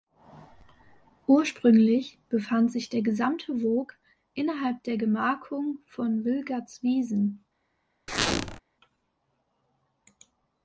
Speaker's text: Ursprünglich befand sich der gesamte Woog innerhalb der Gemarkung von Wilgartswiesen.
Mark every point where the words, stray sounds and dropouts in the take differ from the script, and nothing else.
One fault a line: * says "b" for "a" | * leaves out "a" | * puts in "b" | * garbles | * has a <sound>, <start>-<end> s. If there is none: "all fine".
* has a squeak, 8.1-8.6 s